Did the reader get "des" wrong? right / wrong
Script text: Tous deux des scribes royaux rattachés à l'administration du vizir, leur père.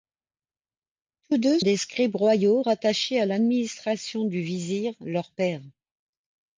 right